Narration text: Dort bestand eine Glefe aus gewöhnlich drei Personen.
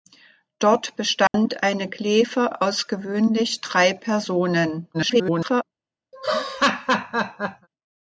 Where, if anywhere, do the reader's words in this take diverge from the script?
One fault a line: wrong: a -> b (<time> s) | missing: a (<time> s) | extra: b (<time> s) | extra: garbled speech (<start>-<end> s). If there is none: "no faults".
extra: garbled speech (4.9-5.6 s)